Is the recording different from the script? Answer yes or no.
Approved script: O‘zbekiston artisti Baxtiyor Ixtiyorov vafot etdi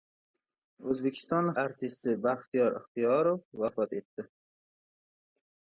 no